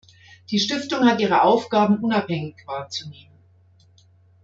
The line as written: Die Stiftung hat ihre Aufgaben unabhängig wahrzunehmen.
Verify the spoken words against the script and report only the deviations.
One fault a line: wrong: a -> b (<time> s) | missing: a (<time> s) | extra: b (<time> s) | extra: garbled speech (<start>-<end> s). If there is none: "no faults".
no faults